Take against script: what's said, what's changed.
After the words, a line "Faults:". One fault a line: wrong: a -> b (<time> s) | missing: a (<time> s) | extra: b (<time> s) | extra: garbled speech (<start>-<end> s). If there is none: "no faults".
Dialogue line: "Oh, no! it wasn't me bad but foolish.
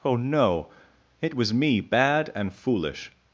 "Oh, no! it was me bad and foolish.
Faults:
wrong: wasn't -> was (1.4 s)
wrong: but -> and (2.3 s)